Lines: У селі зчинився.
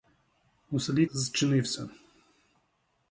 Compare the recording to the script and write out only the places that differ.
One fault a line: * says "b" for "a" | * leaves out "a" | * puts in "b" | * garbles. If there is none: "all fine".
all fine